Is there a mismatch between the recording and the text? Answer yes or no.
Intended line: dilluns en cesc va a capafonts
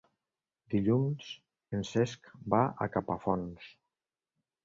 no